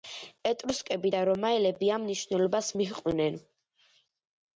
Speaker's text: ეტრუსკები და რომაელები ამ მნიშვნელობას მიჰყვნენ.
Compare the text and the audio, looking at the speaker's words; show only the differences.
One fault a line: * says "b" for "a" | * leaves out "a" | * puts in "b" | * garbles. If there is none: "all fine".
all fine